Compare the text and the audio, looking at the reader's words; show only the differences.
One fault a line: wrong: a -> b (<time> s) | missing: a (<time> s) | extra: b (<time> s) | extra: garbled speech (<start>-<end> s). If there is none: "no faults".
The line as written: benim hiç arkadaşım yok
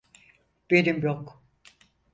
missing: hiç arkadaşım (1.0 s)